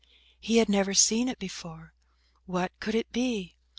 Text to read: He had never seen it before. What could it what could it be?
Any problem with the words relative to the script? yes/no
yes